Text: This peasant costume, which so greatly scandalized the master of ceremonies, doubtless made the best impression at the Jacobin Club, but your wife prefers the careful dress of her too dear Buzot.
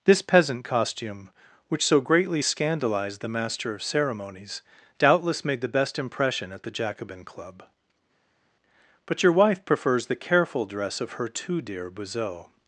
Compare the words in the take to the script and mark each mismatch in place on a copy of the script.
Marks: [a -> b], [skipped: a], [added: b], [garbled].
This peasant costume, which so greatly scandalized the master of ceremonies, doubtless made the best impression at the Jacobin Club, but your wife prefers the careful dress of her too dear Buzot.